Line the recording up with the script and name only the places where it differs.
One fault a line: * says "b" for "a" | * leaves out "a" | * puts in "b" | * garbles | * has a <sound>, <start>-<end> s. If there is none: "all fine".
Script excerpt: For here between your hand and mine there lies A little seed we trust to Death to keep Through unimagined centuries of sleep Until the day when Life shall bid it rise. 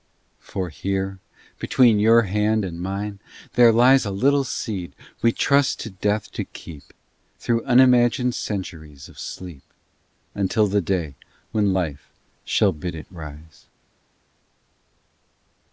all fine